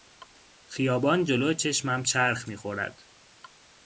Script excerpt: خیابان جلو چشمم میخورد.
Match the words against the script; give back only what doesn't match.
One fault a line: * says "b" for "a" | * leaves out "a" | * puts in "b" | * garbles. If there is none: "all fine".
* puts in "چرخ"